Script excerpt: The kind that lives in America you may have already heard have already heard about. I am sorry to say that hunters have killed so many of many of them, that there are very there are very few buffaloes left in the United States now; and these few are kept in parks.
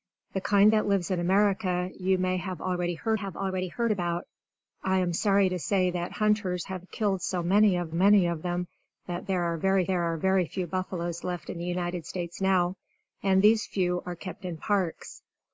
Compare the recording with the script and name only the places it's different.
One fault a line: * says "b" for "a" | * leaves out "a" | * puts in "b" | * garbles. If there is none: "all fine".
all fine